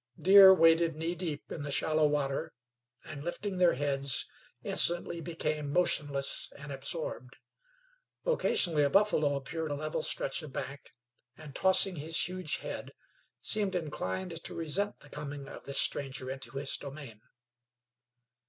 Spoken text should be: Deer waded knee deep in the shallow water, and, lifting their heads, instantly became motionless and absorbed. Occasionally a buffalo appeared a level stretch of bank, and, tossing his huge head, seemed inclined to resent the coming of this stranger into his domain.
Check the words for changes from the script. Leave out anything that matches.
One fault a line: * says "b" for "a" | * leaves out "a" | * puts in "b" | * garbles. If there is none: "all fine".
all fine